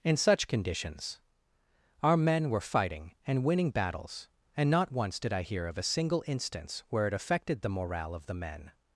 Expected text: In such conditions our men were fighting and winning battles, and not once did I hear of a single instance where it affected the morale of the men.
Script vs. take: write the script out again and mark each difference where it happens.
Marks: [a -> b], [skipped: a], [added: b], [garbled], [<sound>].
In such conditions our men were fighting and winning battles, and not once did I hear of a single instance where it affected the morale of the men.